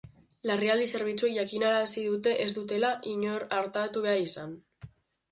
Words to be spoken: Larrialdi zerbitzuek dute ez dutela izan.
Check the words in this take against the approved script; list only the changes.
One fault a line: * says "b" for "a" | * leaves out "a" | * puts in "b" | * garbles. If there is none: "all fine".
* puts in "jakinarazi"
* puts in "inor artatu behar"